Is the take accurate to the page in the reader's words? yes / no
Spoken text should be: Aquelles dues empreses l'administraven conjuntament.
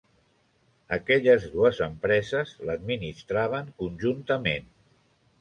yes